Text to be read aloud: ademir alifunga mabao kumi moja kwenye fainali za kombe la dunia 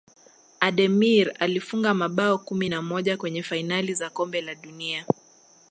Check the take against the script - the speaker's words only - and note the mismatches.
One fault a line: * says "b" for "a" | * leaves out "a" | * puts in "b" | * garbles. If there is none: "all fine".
* puts in "na"